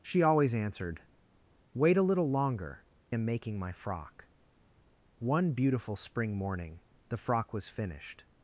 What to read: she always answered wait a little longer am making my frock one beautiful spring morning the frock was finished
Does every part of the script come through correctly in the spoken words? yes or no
yes